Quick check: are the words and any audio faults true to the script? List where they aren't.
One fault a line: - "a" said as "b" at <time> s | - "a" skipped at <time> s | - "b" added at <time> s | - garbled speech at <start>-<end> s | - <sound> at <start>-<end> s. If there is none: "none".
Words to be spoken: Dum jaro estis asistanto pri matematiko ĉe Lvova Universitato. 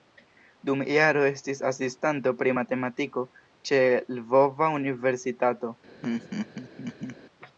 - laugh at 6.0-7.2 s